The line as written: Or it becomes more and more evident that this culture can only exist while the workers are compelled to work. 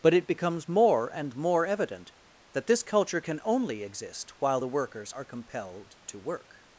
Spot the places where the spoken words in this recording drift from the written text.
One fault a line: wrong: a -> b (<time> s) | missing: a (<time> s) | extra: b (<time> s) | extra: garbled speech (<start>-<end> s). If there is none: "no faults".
wrong: Or -> But (0.0 s)